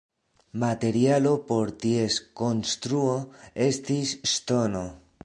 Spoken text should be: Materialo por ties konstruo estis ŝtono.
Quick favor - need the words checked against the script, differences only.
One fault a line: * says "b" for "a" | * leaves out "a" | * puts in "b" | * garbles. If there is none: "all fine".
all fine